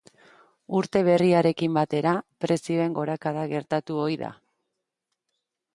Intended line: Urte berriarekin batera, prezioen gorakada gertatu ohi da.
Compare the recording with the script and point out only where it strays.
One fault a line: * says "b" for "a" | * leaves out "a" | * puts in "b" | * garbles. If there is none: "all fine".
all fine